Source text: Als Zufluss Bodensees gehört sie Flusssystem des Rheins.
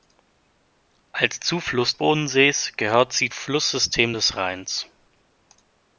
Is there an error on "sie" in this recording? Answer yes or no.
no